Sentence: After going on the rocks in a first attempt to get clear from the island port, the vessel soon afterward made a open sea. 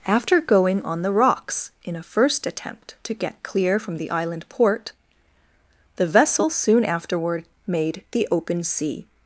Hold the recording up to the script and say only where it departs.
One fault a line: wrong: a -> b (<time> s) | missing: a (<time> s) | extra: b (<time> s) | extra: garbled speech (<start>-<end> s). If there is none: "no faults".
wrong: a -> the (8.1 s)